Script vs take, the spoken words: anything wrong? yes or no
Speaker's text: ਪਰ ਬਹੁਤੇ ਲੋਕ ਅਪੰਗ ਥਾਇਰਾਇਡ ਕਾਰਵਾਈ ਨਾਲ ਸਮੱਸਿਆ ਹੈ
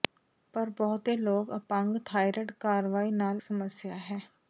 no